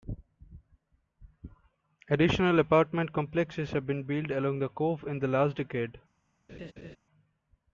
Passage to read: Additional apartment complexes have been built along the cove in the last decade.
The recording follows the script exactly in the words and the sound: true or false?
false